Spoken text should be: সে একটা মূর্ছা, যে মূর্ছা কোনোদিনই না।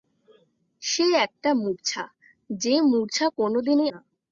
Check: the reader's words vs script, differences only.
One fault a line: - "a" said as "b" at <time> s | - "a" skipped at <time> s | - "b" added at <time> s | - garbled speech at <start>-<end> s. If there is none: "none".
none